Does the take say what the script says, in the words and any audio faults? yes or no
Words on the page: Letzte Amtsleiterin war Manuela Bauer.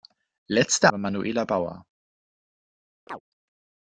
no